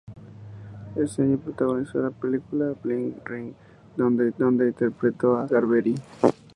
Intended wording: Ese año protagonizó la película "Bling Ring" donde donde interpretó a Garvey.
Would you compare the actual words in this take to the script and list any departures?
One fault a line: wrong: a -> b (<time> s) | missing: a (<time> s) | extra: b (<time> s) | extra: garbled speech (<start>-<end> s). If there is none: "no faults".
no faults